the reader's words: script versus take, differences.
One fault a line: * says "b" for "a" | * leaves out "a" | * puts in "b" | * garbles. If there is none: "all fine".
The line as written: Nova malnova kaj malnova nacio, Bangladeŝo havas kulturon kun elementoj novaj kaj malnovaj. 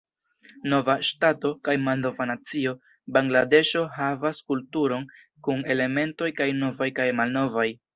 * says "ŝtato" for "malnova"
* puts in "kaj"